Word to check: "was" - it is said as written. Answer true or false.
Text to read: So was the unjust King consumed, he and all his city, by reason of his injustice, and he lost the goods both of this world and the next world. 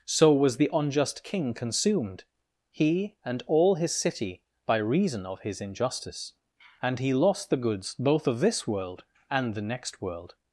true